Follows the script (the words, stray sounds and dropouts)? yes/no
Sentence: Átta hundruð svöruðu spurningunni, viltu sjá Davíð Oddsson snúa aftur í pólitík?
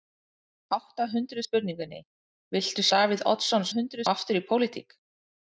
no